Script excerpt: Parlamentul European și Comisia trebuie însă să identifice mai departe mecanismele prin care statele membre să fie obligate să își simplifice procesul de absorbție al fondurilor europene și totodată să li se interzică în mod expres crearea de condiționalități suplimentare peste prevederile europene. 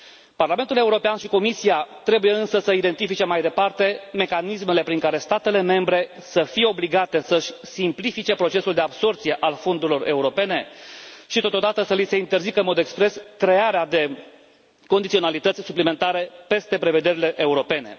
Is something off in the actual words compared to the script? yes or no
no